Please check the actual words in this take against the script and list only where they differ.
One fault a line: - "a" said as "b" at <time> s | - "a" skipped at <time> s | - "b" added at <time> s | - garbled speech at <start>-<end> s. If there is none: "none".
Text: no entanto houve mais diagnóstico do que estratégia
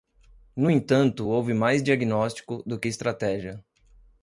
none